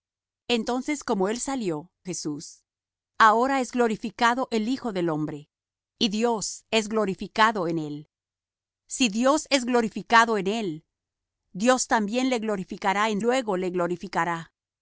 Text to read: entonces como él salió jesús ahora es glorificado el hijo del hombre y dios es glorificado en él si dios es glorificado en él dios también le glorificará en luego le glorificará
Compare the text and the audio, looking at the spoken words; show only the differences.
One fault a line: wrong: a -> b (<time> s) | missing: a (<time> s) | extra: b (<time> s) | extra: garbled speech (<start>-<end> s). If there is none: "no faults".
no faults